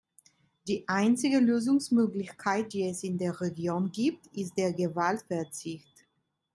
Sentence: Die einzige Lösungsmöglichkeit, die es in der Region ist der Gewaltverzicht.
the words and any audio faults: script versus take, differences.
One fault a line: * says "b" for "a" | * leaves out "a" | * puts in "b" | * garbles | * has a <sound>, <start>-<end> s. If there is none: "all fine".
* puts in "gibt"